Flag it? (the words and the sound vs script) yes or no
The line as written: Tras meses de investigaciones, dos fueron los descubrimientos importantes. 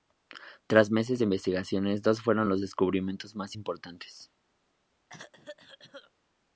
yes